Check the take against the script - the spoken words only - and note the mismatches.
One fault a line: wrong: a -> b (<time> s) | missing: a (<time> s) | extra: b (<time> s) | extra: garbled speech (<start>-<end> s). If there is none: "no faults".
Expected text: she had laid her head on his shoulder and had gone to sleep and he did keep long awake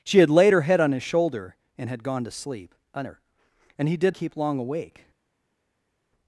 no faults